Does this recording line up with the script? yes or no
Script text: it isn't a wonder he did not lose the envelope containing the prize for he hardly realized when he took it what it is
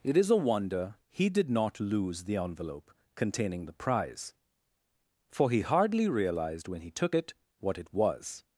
no